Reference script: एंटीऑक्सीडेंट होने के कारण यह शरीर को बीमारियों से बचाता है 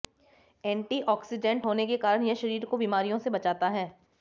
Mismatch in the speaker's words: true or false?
false